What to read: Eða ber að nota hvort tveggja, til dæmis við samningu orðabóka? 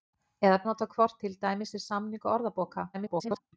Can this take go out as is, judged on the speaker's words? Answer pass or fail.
fail